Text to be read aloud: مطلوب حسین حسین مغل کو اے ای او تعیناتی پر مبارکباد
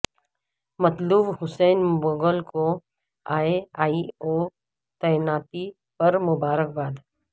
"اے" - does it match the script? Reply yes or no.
yes